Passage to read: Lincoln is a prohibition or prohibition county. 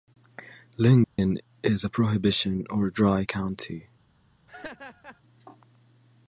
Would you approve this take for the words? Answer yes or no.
no